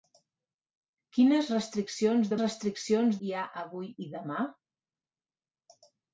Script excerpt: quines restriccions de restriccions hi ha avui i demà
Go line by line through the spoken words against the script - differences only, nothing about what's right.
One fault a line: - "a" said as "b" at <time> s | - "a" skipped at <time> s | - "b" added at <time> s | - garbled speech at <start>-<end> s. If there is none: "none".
none